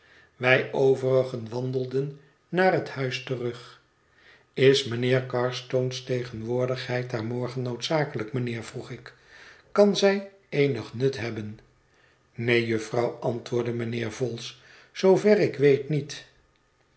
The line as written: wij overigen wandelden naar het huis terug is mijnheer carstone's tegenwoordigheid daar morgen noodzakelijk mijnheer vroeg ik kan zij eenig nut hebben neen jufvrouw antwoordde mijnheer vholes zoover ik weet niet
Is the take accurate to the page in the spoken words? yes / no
yes